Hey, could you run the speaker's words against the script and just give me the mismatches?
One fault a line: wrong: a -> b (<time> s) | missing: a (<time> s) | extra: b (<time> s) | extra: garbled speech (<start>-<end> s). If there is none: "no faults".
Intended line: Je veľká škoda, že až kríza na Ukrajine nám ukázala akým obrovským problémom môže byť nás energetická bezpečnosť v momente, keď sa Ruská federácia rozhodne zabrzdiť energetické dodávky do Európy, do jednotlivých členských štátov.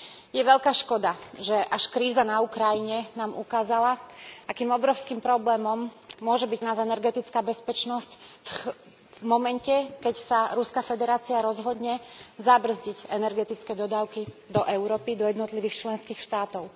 no faults